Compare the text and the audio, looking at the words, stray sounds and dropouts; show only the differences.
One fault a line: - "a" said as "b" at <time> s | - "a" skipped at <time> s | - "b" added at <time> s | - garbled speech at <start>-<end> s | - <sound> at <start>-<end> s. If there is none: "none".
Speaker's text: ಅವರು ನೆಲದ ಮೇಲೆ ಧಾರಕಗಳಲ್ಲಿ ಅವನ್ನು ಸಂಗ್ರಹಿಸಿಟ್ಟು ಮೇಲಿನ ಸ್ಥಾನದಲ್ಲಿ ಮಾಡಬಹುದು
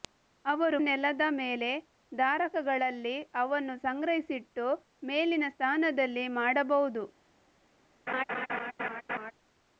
- laugh at 8.1-9.3 s